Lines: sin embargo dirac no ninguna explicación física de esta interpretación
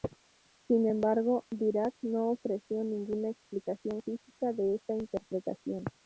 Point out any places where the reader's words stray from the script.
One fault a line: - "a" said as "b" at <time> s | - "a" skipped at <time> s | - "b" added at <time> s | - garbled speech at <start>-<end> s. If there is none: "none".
- "ofreció" added at 2.3 s